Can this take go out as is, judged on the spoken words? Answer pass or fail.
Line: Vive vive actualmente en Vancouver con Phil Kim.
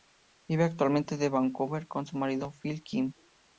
fail